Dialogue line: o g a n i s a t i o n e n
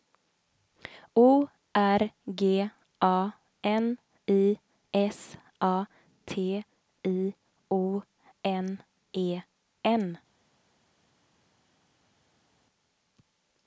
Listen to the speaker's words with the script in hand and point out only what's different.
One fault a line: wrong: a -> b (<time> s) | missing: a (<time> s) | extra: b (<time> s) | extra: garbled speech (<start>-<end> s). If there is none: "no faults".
extra: r (1.8 s)